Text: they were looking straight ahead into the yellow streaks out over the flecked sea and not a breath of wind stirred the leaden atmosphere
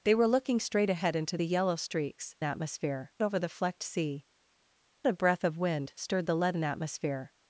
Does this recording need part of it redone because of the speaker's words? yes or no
yes